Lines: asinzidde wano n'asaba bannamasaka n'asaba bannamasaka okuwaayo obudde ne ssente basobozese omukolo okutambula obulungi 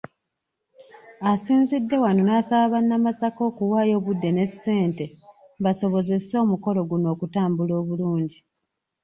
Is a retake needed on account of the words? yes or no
yes